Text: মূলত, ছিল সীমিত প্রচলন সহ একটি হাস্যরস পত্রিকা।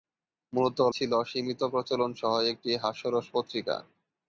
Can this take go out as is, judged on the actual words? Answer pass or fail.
pass